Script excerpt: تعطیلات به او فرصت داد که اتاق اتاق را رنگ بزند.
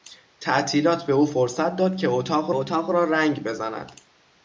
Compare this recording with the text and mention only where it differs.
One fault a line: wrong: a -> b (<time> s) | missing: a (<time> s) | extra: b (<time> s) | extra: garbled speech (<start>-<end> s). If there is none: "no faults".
no faults